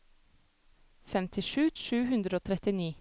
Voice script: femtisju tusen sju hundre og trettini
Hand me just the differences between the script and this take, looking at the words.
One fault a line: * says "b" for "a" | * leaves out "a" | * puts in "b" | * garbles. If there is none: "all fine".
* leaves out "tusen"